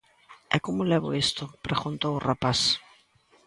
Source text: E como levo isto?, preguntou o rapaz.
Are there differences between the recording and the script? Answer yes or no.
no